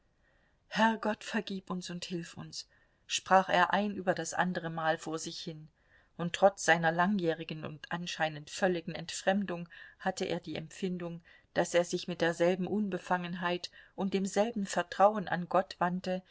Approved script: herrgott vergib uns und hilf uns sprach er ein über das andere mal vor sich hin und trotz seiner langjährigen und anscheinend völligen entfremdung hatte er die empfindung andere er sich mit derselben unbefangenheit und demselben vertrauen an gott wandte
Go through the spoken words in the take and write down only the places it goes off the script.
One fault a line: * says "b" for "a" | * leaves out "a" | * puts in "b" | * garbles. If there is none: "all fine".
* says "daß" for "andere"